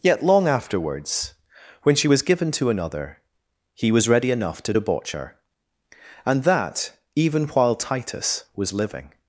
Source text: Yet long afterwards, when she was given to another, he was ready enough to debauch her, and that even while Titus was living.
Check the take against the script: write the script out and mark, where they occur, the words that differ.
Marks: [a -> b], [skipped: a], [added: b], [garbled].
Yet long afterwards, when she was given to another, he was ready enough to debauch her, and that even while Titus was living.